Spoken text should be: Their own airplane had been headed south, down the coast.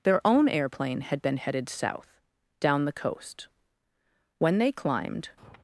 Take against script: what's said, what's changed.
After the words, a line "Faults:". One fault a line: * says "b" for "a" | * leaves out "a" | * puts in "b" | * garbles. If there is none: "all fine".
Their own airplane had been headed south, down the coast. When they climbed
Faults:
* puts in "When they climbed"